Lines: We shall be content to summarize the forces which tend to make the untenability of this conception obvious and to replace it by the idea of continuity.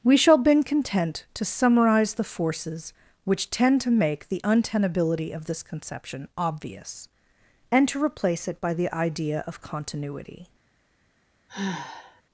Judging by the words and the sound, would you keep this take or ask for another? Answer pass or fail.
fail